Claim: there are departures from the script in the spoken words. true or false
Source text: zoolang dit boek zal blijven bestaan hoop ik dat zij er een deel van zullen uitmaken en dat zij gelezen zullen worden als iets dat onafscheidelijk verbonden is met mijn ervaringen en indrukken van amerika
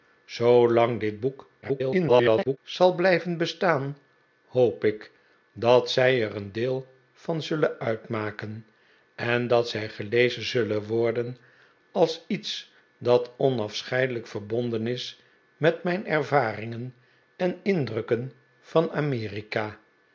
true